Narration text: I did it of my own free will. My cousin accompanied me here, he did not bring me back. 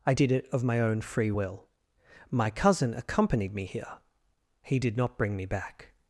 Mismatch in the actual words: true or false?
false